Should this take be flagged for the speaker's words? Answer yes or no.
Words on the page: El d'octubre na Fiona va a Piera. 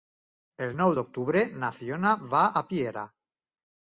yes